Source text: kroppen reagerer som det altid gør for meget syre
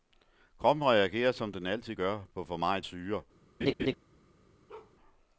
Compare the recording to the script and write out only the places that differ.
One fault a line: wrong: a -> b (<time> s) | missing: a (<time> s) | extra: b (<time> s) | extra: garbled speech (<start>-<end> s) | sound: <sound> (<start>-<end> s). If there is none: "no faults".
wrong: det -> den (1.5 s)
extra: på (2.3 s)
sound: laugh (3.6-3.9 s)
sound: bark (4.7-5.0 s)